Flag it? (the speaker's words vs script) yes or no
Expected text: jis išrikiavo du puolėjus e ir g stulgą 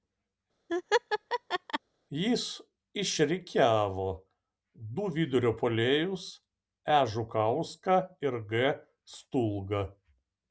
yes